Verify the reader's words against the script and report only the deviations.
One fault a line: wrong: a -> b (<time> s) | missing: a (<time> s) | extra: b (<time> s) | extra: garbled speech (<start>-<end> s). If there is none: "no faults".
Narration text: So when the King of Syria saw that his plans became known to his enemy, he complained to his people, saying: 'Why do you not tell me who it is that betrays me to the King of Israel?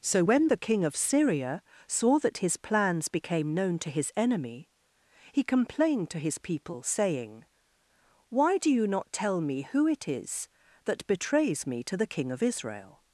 no faults